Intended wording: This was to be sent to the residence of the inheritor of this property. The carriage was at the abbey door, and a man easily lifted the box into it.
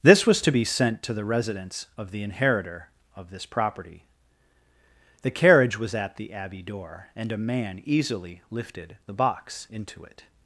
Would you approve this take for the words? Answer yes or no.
yes